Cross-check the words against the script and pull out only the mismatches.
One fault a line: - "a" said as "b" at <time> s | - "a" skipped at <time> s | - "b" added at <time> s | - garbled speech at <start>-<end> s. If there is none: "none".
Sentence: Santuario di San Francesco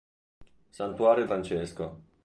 - "di San" skipped at 1.2 s